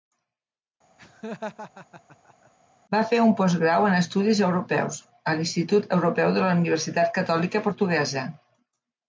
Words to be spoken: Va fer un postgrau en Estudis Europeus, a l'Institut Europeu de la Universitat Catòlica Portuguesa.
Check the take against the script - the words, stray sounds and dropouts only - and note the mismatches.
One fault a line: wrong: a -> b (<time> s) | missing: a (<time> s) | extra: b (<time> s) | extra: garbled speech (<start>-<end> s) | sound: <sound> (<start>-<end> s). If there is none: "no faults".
sound: laugh (1.0-2.5 s)